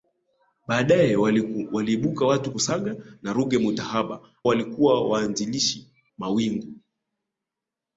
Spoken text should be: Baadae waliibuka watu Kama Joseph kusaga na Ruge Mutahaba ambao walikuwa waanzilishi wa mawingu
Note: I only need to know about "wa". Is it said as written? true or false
false